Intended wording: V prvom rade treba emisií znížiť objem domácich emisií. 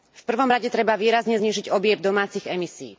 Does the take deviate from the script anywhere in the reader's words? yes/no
yes